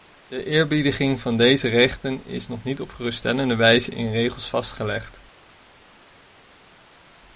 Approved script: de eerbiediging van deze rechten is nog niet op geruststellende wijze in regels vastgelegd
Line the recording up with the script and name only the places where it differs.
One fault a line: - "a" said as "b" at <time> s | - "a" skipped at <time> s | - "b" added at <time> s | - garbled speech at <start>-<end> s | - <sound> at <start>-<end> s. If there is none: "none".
none